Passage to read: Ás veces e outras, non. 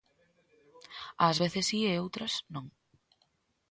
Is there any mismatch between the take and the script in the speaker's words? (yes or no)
yes